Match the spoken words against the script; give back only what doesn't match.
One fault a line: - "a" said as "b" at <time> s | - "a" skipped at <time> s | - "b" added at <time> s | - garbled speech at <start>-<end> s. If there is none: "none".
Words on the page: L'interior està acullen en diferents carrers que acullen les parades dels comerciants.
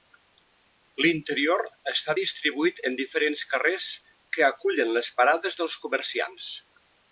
- "acullen" said as "distribuït" at 2.2 s